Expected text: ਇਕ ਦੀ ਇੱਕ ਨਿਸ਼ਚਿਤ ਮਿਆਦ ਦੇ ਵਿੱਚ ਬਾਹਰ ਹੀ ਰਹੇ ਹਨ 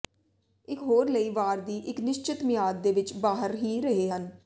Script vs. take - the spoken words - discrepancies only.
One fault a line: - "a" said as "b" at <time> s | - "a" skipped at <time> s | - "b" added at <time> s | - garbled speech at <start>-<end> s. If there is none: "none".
- "ਹੋਰ ਲਈ ਵਾਰ" added at 0.8 s